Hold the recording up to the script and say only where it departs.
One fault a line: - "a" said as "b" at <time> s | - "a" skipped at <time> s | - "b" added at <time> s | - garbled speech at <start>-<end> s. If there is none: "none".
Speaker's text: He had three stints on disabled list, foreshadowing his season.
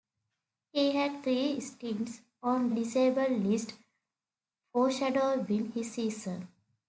none